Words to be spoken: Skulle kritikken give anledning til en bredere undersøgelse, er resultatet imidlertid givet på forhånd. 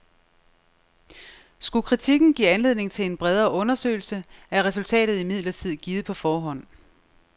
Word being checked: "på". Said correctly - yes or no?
yes